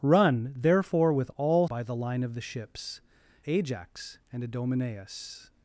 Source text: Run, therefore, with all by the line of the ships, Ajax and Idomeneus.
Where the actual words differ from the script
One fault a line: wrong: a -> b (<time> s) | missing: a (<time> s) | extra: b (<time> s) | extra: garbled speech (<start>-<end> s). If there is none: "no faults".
no faults